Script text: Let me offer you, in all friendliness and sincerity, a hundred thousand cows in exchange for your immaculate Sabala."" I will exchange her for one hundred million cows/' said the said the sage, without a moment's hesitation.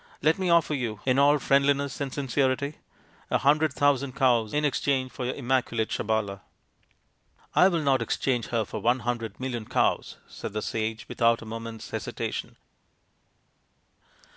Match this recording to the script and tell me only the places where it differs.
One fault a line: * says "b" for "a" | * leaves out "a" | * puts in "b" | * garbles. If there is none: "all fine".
* puts in "not"
* leaves out "said the"